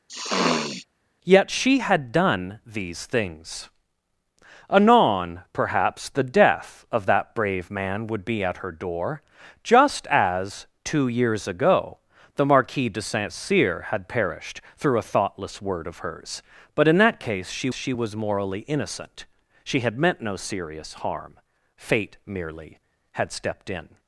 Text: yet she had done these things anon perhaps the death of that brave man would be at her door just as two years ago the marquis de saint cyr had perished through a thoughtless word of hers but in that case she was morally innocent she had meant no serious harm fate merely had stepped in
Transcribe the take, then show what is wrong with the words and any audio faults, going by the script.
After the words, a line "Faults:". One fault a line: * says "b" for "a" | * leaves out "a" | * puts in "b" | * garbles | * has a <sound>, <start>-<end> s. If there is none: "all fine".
yet she had done these things anon perhaps the death of that brave man would be at her door just as two years ago the marquis de saint cyr had perished through a thoughtless word of hers but in that case she she was morally innocent she had meant no serious harm fate merely had stepped in
Faults:
* has a sniff, 0.1-0.9 s
* puts in "she"